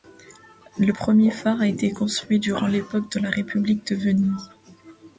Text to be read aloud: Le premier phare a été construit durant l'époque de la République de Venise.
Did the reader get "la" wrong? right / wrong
right